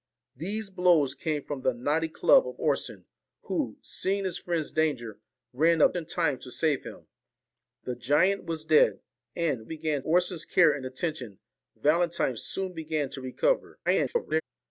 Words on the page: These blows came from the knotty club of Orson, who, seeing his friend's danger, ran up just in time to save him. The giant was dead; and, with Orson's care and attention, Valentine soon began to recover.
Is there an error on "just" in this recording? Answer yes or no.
yes